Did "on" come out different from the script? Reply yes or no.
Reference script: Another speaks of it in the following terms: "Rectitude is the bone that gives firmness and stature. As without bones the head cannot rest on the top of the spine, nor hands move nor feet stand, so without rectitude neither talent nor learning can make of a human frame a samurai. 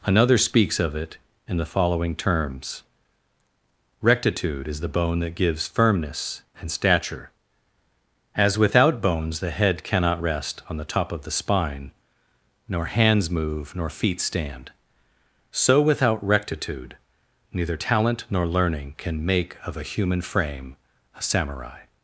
no